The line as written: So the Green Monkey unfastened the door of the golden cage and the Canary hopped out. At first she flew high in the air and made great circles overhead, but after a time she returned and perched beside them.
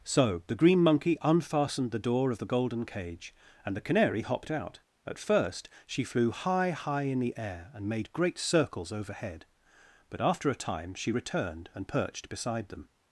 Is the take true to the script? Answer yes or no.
no